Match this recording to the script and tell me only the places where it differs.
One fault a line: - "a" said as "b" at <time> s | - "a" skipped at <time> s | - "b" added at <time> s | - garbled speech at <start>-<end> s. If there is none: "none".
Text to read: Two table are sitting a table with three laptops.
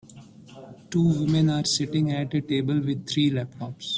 - "table" said as "women" at 1.2 s
- "at" added at 2.1 s